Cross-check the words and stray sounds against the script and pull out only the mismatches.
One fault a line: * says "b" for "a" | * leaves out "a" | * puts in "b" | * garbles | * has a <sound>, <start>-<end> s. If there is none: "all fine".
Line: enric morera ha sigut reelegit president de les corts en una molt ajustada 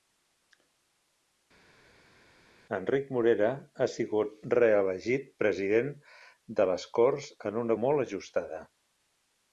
all fine